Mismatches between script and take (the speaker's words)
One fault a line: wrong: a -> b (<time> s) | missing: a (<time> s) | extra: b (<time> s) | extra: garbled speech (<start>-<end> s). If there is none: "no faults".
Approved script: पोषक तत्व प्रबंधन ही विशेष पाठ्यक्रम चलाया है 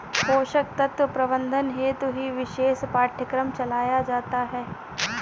extra: हेतु (1.7 s)
extra: जाता (4.0 s)